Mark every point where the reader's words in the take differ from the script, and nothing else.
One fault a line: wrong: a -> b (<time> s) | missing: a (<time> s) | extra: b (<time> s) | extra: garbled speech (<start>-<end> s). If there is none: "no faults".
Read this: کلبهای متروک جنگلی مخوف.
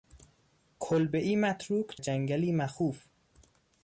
no faults